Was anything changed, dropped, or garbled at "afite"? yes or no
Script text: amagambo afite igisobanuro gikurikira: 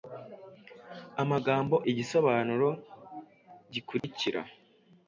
yes